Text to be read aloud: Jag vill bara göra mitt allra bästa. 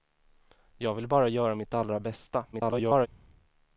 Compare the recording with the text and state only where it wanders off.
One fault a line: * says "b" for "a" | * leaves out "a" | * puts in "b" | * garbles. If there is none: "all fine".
* garbles